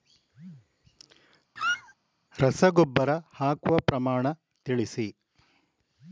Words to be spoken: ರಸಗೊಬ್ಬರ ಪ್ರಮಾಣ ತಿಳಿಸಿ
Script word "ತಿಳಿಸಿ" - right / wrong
right